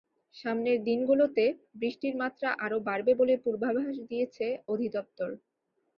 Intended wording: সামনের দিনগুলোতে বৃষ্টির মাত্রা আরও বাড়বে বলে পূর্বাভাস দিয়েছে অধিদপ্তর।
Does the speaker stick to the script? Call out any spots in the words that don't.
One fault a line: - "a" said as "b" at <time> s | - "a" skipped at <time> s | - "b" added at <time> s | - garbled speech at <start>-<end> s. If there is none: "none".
none